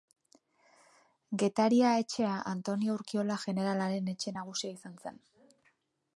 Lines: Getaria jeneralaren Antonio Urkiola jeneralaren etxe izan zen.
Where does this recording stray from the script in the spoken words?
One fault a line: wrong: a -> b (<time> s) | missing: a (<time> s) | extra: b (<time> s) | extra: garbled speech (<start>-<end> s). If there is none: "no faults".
wrong: jeneralaren -> etxea (2.0 s)
extra: nagusia (4.4 s)